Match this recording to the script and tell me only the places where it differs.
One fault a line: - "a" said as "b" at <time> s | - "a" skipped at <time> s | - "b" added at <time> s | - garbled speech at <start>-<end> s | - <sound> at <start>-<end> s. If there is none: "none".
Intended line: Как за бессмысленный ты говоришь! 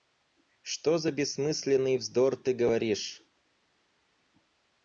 - "Как" said as "Что" at 0.6 s
- "вздор" added at 2.0 s